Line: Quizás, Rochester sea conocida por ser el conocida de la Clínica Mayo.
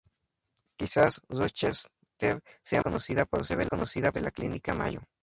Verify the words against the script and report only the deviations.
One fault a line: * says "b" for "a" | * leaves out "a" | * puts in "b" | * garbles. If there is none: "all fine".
all fine